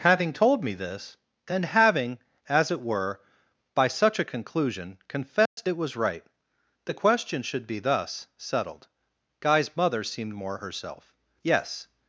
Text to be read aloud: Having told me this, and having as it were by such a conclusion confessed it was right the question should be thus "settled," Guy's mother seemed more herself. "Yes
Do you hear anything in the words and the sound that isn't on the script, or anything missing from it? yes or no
yes